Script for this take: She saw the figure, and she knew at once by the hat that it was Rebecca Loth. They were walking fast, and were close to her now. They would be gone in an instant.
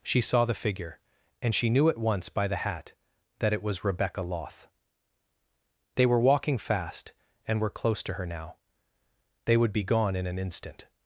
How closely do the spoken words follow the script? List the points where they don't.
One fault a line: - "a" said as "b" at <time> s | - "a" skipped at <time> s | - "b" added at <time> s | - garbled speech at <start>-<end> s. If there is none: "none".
none